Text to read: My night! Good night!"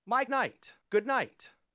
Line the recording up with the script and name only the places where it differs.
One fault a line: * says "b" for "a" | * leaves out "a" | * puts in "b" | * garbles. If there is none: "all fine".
all fine